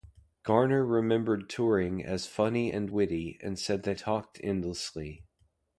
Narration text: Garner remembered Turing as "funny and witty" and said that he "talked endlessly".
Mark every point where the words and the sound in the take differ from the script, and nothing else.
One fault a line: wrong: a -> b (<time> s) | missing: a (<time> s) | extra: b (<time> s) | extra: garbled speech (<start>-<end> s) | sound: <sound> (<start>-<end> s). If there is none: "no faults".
missing: he (4.0 s)